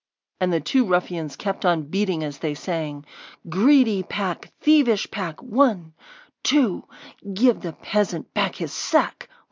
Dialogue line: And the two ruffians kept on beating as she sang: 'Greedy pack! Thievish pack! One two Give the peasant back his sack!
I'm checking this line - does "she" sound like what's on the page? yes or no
no